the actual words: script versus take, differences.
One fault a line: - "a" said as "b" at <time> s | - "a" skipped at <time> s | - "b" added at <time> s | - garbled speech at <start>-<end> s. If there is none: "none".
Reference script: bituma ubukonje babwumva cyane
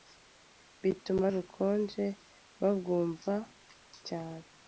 none